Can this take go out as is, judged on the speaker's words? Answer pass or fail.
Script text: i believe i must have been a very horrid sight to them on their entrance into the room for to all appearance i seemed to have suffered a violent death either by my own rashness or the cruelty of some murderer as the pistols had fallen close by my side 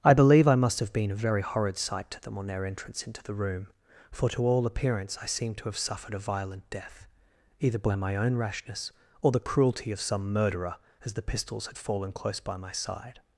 pass